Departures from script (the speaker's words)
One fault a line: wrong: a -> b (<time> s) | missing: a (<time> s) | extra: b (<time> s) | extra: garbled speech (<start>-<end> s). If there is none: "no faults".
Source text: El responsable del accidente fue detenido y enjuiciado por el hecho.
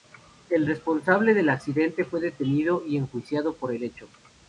no faults